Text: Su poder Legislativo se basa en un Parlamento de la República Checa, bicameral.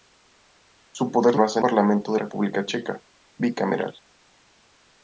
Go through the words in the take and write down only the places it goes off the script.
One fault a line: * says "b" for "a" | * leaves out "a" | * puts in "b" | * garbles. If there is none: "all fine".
* leaves out "Legislativo se"
* leaves out "un"
* leaves out "la"